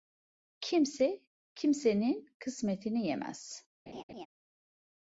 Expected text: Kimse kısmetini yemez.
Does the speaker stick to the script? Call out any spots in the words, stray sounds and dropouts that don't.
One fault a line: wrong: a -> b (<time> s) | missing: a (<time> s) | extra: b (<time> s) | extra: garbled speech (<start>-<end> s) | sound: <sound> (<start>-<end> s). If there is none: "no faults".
extra: kimsenin (1.6 s)
sound: laugh (3.9-4.3 s)